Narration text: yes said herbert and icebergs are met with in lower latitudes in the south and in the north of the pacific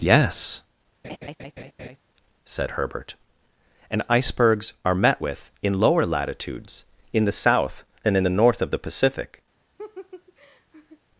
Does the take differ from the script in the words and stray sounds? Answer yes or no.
yes